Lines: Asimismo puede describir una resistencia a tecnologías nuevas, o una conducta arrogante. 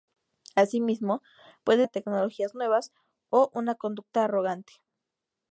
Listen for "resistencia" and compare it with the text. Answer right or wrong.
wrong